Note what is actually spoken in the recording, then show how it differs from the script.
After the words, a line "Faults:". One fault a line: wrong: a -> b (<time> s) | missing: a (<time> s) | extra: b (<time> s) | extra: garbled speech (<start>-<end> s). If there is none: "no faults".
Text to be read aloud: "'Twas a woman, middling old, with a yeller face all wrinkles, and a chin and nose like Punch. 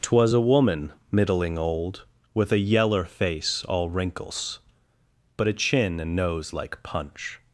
"'Twas a woman, middling old, with a yeller face all wrinkles, but a chin and nose like Punch.
Faults:
wrong: and -> but (5.4 s)